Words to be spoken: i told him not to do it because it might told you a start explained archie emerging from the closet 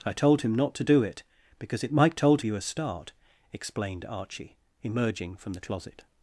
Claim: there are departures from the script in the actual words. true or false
false